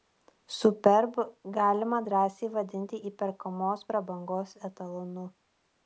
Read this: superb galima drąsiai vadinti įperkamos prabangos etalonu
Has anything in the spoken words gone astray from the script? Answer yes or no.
no